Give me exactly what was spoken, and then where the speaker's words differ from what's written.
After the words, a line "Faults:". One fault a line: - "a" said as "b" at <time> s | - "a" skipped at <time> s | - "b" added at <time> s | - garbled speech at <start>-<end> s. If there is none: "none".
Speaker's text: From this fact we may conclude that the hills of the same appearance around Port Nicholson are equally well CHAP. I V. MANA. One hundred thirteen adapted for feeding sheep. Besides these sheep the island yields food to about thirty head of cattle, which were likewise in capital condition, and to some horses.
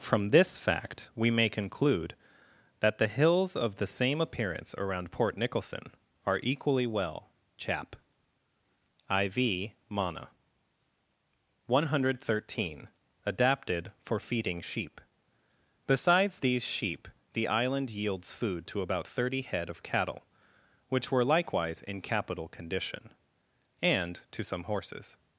From this fact we may conclude that the hills of the same appearance around Port Nicholson are equally well CHAP. I V. MANA. One hundred thirteen adapted for feeding sheep. Besides these sheep the island yields food to about thirty head of cattle, which were likewise in capital condition, and to some horses.
Faults:
none